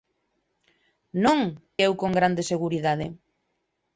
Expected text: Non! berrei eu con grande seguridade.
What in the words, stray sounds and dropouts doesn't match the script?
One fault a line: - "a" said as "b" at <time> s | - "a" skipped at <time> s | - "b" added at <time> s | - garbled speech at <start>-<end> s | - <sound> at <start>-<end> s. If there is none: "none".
- "berrei" skipped at 1.4 s